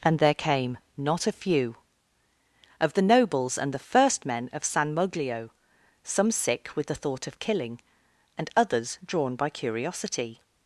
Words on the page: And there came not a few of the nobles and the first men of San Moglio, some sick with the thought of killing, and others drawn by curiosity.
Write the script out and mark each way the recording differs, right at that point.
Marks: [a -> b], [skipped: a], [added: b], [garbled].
And there came not a few of the nobles and the first men of San Moglio, some sick with the thought of killing, and others drawn by curiosity.